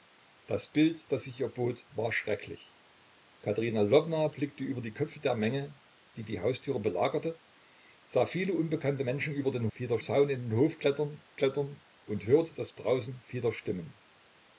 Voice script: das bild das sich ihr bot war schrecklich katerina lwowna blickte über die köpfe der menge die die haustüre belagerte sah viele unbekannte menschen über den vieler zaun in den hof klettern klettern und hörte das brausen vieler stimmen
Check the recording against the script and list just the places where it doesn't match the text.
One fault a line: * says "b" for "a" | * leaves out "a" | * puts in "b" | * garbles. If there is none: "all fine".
all fine